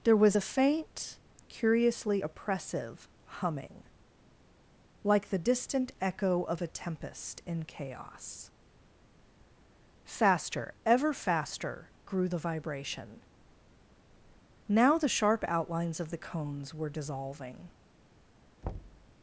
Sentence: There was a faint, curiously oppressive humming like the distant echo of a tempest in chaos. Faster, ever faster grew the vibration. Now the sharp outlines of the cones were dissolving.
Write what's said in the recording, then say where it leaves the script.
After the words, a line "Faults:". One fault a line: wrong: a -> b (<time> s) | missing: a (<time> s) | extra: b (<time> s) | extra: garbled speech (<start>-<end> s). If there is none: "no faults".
There was a faint, curiously oppressive humming like the distant echo of a tempest in chaos. Faster, ever faster grew the vibration. Now the sharp outlines of the cones were dissolving.
Faults:
no faults